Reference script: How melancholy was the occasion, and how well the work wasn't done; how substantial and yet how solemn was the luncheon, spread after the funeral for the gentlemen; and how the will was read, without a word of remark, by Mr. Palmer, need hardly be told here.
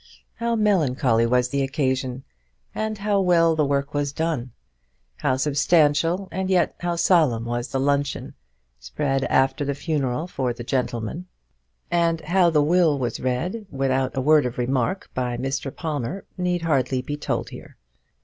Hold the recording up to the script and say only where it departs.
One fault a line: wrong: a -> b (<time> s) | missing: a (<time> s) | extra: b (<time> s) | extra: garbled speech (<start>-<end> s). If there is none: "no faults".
wrong: wasn't -> was (3.9 s)